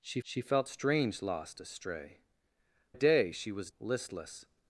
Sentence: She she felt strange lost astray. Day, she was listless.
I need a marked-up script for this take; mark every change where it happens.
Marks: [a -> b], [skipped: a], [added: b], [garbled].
She she felt strange lost astray. Day, she was listless.